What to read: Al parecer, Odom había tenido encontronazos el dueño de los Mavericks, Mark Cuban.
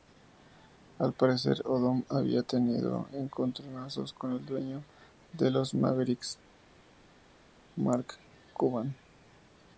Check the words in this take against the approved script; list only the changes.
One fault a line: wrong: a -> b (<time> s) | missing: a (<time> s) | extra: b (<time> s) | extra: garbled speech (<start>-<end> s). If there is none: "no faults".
extra: con (4.1 s)